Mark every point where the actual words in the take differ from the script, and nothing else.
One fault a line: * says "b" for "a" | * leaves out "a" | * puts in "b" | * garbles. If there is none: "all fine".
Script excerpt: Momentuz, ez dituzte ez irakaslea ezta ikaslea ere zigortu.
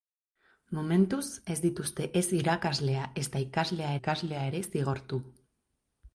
* puts in "ikaslea"